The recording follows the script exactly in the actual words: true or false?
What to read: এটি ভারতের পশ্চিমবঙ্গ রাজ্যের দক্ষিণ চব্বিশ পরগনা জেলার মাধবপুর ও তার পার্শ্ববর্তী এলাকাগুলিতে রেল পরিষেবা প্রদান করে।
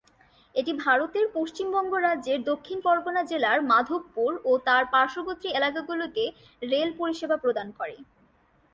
false